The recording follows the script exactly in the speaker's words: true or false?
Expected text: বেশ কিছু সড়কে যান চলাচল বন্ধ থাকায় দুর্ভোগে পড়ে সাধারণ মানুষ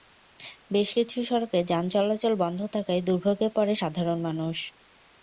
true